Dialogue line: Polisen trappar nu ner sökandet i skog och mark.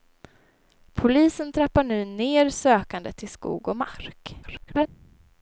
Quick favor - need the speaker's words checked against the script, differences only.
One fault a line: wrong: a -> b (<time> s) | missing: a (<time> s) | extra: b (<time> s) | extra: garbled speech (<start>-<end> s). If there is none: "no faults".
extra: garbled speech (4.4-4.9 s)